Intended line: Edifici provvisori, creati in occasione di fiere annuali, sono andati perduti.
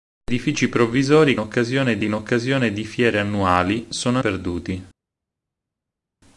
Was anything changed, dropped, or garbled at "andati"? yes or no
yes